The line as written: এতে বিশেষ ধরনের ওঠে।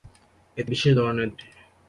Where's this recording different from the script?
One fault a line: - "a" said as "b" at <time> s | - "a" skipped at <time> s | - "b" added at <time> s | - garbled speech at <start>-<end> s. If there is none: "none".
none